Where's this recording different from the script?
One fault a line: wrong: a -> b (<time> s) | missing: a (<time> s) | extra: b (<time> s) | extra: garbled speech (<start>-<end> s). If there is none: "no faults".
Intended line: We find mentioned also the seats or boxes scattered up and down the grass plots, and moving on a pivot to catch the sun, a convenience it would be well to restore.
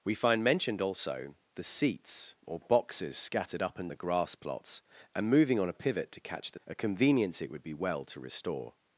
missing: down (3.9 s)
missing: sun (6.6 s)